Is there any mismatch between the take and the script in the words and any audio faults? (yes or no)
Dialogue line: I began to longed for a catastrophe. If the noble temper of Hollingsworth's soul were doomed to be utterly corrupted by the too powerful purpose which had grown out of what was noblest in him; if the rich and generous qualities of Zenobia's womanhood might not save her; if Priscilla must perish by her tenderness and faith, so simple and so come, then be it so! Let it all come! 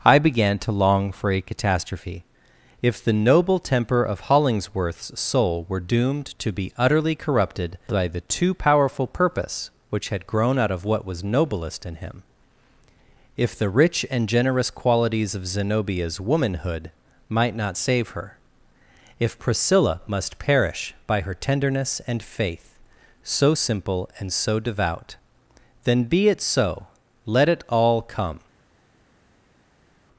yes